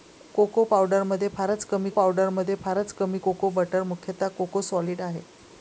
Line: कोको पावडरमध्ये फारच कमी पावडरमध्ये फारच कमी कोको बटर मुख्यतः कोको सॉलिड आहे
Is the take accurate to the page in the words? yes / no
yes